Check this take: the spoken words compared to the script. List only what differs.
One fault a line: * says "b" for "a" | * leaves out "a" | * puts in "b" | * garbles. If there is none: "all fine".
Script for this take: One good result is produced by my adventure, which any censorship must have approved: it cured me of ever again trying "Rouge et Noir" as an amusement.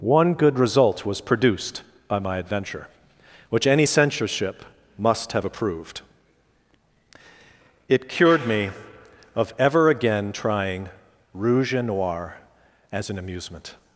* says "was" for "is"